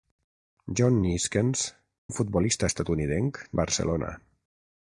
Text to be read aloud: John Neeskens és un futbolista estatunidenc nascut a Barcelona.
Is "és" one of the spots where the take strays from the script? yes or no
yes